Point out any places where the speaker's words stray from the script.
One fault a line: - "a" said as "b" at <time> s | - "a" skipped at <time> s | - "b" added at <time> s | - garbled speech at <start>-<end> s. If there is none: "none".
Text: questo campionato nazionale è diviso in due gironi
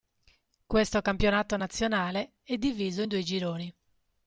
none